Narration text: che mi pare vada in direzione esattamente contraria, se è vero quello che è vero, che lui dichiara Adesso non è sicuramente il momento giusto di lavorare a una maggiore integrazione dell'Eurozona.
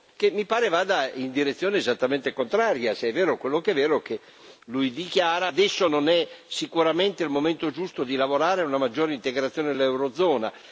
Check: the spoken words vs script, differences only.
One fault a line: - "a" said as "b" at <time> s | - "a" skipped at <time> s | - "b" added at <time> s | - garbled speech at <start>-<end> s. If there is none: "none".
none